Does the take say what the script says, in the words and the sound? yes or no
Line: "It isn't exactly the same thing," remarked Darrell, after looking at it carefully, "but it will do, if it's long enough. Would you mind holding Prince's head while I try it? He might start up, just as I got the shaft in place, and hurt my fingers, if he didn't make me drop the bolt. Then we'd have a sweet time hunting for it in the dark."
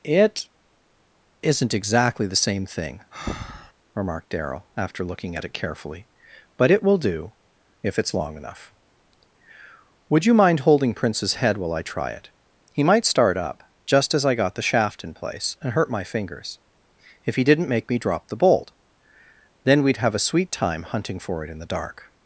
no